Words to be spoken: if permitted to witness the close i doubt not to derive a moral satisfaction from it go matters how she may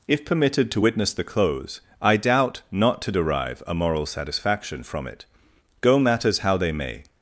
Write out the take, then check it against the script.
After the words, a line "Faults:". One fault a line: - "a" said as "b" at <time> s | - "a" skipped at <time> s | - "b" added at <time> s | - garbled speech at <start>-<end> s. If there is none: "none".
if permitted to witness the close i doubt not to derive a moral satisfaction from it go matters how they may
Faults:
- "she" said as "they" at 6.6 s